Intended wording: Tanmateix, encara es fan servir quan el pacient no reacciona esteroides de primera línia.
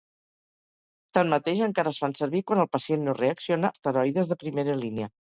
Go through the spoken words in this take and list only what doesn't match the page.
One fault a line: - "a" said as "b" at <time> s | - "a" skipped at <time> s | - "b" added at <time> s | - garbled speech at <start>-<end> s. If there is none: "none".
none